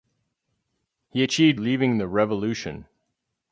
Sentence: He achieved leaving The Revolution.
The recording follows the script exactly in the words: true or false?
true